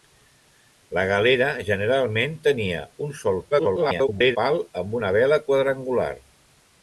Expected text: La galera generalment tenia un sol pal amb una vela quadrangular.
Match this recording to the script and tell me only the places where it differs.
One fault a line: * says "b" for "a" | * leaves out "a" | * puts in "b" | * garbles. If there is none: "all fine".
* garbles